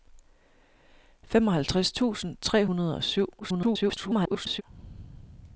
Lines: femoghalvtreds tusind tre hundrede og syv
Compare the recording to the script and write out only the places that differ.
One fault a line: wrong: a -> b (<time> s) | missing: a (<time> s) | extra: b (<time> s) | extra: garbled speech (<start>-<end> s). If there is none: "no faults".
extra: garbled speech (3.4-4.6 s)